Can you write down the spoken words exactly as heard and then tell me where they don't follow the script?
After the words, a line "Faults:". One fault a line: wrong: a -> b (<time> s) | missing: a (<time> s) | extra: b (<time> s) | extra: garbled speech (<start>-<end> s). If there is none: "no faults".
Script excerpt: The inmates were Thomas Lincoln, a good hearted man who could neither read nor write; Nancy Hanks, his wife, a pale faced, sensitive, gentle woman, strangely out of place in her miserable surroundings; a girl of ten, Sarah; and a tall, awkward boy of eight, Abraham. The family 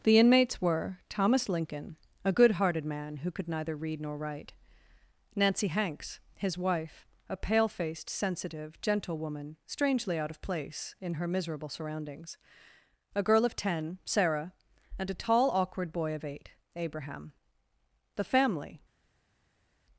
The inmates were Thomas Lincoln, a good hearted man who could neither read nor write; Nancy Hanks, his wife, a pale faced, sensitive, gentle woman, strangely out of place in her miserable surroundings; a girl of ten, Sarah; and a tall, awkward boy of eight, Abraham. The family
Faults:
no faults